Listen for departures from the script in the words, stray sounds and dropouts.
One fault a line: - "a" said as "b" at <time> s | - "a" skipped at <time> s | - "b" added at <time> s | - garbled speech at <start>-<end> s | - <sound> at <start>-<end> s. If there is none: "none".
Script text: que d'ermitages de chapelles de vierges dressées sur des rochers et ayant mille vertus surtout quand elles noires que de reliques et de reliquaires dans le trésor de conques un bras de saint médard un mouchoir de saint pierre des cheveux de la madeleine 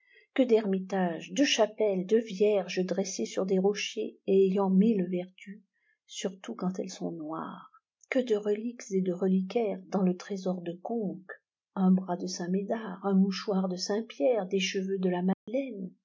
- "sont" added at 6.9 s
- dropout at 15.3-15.5 s